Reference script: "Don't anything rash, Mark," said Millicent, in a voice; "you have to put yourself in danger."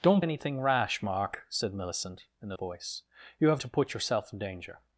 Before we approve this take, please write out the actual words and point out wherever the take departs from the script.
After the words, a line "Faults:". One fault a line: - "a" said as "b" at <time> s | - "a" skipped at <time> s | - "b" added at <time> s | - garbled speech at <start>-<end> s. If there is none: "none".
"Don't anything rash, Mark," said Millicent, in a voice; "you have to put yourself in danger."
Faults:
none